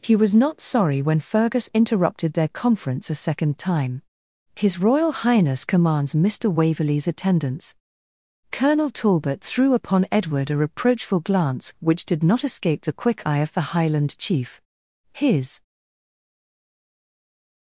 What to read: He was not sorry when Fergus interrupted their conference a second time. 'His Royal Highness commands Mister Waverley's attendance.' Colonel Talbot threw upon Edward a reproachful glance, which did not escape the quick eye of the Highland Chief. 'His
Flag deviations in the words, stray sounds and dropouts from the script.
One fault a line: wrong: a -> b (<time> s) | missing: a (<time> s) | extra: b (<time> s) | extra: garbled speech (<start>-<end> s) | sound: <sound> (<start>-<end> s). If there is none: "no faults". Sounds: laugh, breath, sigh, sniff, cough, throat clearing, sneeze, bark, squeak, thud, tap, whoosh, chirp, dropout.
no faults